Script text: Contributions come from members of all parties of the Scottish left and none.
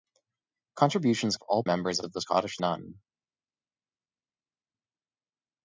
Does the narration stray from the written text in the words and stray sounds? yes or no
yes